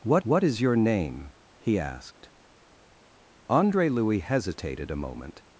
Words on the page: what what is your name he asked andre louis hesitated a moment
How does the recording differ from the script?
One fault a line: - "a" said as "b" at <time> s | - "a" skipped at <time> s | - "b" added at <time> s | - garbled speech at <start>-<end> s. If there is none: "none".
none